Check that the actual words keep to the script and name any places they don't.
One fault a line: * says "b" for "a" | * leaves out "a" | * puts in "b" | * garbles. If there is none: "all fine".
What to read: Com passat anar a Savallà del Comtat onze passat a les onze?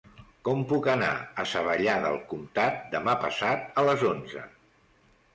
* says "puc" for "passat"
* says "demà" for "onze"